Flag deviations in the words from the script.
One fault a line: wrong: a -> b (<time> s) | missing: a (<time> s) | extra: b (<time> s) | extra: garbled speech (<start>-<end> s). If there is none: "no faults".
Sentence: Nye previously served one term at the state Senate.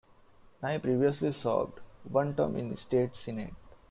wrong: at -> in (2.5 s)